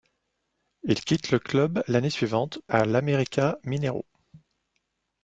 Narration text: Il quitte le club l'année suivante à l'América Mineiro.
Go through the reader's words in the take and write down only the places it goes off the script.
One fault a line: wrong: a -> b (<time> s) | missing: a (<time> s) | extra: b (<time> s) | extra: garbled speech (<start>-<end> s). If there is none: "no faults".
no faults